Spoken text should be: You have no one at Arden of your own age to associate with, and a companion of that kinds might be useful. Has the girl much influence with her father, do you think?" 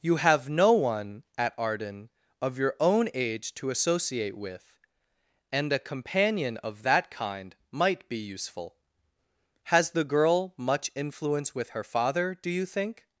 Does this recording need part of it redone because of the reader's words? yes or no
yes